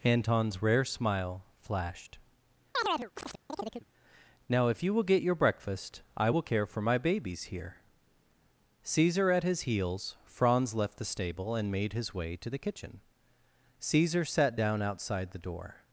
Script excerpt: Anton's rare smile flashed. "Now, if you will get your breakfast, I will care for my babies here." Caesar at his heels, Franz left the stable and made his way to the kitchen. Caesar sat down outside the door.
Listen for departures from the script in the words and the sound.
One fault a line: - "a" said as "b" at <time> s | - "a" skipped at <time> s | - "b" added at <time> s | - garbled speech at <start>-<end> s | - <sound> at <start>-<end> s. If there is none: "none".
- chirp at 2.7-3.9 s